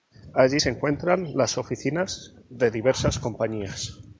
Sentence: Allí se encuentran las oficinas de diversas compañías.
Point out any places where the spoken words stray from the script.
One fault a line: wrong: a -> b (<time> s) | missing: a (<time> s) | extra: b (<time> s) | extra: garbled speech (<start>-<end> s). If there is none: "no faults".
no faults